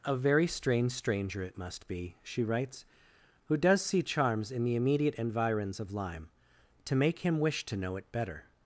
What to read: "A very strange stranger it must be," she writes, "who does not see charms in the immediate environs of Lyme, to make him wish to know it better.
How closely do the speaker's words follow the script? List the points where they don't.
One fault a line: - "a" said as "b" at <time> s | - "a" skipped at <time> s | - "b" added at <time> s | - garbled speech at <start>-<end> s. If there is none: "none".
- "not" skipped at 3.8 s